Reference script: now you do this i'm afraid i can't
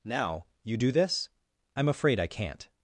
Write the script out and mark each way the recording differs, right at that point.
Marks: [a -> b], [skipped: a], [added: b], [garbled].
now you do this i'm afraid i can't